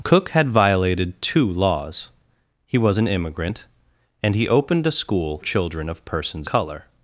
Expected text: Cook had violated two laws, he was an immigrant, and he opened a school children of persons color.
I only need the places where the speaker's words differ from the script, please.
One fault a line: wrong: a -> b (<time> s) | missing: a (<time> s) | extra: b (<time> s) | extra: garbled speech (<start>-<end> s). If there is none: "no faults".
no faults